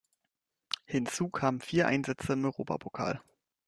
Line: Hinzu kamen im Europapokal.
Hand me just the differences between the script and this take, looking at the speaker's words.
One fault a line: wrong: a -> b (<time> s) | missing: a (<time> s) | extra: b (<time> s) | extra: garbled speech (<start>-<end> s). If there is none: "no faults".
extra: vier Einsätze (1.6 s)